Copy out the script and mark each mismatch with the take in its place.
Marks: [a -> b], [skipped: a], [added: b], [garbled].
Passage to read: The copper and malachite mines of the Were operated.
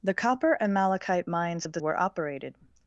The copper and malachite mines of the Were operated.